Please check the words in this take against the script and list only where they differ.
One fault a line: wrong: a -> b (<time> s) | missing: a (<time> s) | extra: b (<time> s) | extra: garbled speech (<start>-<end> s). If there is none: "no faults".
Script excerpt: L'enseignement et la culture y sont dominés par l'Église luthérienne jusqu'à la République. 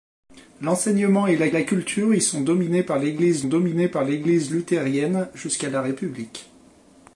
extra: la (1.5 s)
extra: dominés par l'Église (3.5 s)